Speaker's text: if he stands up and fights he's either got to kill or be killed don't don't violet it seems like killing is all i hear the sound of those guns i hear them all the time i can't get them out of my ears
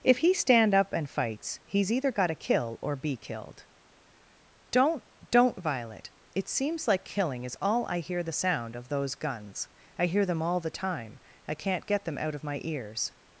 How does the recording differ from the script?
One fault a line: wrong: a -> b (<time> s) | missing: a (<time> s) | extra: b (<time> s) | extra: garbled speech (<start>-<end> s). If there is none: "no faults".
wrong: stands -> stand (0.3 s)